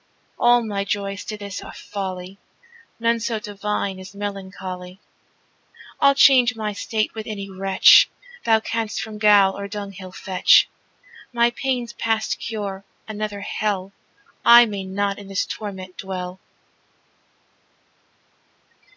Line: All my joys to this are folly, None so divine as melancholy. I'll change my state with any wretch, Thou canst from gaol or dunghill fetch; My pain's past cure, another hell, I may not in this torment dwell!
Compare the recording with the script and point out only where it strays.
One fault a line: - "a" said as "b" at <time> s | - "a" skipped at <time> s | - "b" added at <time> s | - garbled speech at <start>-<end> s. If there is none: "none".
none